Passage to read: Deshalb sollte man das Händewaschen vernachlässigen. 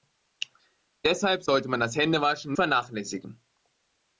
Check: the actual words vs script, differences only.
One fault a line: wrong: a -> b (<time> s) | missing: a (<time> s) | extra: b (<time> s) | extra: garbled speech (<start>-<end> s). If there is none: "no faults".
no faults